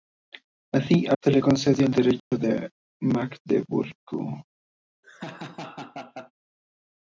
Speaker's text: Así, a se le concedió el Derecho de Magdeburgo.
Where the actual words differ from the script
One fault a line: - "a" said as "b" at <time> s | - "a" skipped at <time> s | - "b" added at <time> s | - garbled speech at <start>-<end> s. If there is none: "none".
none